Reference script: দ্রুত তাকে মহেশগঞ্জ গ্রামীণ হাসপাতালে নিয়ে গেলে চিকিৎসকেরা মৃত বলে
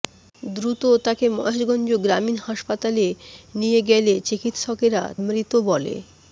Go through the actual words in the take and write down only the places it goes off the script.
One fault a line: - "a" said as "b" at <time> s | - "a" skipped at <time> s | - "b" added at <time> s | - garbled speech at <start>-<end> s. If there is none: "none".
none